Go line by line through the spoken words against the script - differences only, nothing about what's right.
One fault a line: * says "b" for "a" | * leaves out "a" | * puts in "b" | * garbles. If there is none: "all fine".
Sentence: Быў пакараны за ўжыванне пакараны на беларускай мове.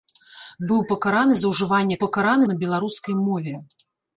all fine